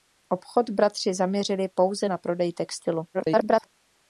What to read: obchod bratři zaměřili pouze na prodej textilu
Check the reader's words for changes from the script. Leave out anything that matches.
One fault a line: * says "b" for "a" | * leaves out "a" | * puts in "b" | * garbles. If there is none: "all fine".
* garbles